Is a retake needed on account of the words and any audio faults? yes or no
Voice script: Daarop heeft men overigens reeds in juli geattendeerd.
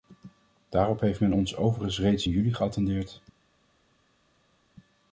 yes